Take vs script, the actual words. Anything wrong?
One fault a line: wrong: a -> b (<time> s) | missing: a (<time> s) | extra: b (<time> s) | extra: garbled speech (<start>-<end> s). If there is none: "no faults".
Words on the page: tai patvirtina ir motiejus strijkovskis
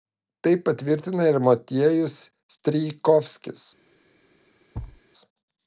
no faults